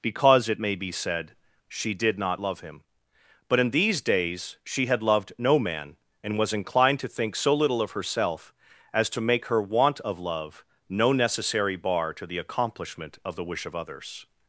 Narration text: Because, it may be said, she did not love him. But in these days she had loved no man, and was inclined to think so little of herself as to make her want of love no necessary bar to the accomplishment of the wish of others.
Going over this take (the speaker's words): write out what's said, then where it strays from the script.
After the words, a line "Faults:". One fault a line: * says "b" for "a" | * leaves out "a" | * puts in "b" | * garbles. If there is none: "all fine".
Because, it may be said, she did not love him. But in these days she had loved no man, and was inclined to think so little of herself as to make her want of love no necessary bar to the accomplishment of the wish of others.
Faults:
all fine